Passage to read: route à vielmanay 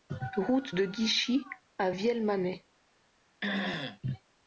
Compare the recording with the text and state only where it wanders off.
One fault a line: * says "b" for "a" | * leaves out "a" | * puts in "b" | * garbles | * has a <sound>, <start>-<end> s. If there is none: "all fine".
* puts in "de guichy"
* has a throat clearing, 3.4-4.0 s